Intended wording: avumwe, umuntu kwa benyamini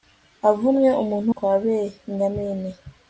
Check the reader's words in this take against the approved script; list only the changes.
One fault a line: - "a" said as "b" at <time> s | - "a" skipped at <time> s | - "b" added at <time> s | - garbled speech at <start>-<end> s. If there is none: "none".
none